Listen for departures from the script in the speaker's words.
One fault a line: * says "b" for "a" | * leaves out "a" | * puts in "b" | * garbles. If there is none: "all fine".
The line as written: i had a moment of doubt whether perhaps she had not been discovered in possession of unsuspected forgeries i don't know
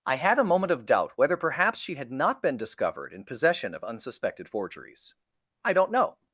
all fine